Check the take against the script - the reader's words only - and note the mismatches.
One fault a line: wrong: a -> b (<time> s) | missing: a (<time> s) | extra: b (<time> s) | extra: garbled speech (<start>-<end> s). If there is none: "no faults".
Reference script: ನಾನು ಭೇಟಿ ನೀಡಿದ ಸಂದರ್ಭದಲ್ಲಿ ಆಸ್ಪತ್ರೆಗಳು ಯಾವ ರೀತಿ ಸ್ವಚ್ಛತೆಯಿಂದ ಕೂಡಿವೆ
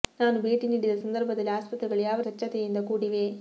missing: ರೀತಿ (2.2 s)